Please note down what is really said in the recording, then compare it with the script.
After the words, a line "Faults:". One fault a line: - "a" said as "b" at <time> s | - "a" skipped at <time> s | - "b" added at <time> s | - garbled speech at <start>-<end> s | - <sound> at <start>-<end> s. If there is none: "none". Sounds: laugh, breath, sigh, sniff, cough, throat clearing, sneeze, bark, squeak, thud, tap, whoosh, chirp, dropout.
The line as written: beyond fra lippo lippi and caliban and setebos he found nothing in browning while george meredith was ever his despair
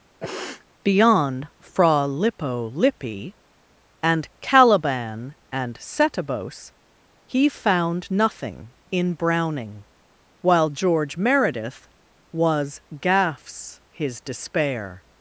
beyond fra lippo lippi and caliban and setebos he found nothing in browning while george meredith was gaffs his despair
Faults:
- sniff at 0.2-0.7 s
- "ever" said as "gaffs" at 13.0 s